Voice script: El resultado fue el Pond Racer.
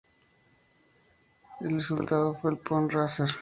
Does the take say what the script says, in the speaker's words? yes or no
yes